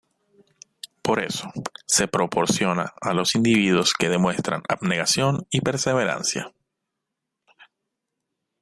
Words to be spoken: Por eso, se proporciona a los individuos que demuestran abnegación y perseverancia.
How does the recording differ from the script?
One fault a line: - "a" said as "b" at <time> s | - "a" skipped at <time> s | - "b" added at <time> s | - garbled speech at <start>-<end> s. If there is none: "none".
none